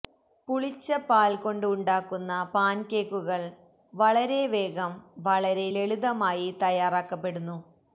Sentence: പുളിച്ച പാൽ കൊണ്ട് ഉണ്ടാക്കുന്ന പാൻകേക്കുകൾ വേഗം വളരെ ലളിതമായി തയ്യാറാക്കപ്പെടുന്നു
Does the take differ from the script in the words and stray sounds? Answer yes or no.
yes